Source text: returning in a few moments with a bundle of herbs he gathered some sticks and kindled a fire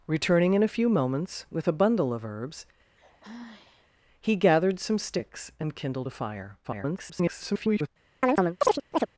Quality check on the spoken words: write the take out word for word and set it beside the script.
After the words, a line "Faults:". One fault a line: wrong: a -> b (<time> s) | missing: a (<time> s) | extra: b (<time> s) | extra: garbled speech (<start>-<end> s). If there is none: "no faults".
returning in a few moments with a bundle of herbs he gathered some sticks and kindled a fire [garbled]
Faults:
extra: garbled speech (6.6-7.9 s)